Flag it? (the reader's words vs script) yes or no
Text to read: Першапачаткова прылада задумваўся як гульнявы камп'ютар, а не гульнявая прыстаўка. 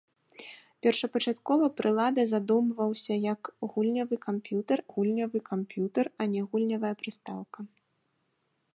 yes